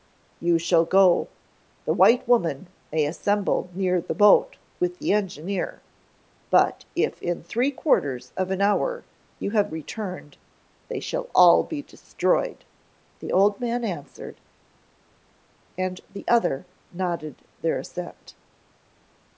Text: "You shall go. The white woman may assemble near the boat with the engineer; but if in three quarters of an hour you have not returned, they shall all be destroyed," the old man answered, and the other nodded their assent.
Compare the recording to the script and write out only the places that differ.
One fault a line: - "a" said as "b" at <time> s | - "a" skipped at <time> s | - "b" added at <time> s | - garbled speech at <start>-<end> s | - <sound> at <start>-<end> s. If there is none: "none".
- "not" skipped at 9.7 s